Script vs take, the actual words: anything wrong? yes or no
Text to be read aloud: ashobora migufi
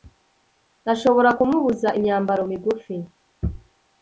yes